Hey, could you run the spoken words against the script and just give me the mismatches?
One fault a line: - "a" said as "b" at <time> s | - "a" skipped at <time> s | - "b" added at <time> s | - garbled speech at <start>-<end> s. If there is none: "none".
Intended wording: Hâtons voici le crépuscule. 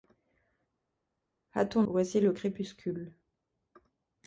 none